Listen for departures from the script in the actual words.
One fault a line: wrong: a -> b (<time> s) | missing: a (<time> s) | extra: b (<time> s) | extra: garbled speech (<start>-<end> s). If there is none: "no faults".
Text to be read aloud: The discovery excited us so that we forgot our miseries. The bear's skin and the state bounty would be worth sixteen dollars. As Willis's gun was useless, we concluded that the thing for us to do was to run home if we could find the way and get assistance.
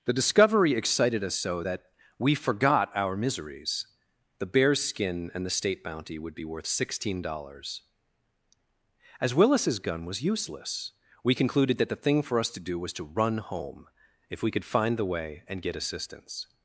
no faults